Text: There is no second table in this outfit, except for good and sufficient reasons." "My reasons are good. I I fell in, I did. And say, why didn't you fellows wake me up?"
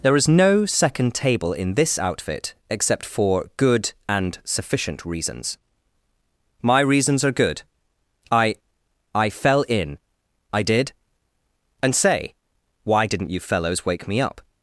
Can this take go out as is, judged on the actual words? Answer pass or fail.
pass